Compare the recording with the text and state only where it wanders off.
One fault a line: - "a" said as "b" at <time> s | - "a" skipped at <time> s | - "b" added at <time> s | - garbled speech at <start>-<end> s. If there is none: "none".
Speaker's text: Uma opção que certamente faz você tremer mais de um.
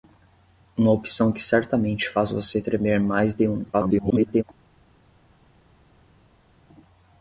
- garbled speech at 3.7-4.4 s